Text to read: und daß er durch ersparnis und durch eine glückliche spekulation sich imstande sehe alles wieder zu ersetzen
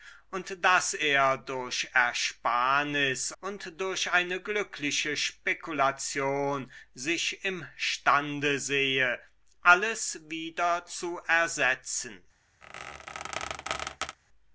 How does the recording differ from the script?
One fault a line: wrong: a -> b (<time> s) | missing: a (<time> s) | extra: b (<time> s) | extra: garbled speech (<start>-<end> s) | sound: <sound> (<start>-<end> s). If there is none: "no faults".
sound: squeak (12.6-14.2 s)